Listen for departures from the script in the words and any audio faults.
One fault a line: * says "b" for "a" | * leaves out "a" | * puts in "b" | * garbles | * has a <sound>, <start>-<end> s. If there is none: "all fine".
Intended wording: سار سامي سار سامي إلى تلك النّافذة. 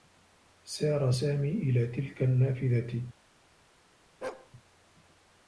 * leaves out "سار سامي"
* has a bark, 4.2-4.5 s